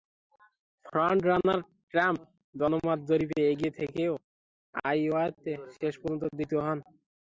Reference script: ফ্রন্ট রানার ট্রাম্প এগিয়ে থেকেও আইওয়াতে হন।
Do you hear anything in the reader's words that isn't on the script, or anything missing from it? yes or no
yes